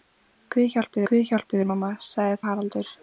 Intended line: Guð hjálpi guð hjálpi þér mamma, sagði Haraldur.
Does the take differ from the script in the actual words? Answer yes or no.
no